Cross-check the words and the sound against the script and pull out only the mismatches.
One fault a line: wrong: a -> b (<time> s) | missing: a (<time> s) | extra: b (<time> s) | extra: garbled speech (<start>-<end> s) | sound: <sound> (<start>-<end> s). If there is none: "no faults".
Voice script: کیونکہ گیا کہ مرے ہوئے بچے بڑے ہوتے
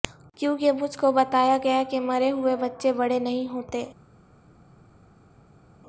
extra: مجھ کو بتایا (0.7 s)
extra: نہیں (3.2 s)